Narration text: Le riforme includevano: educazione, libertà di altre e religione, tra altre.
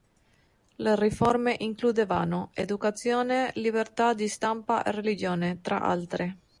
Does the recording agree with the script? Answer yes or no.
no